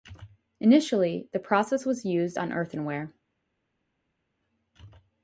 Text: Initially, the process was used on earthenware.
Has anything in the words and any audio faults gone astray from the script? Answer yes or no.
no